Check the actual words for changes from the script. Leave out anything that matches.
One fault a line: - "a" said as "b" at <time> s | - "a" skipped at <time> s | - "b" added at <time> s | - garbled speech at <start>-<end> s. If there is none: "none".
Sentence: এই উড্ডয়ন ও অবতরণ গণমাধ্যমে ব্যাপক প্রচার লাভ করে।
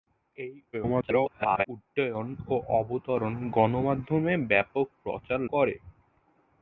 - garbled speech at 0.7-1.7 s
- "লাভ" skipped at 5.4 s